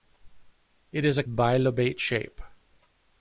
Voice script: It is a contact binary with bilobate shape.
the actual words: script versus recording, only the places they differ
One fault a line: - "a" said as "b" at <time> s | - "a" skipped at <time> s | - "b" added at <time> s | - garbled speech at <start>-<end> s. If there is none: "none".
- "contact binary with" skipped at 1.2 s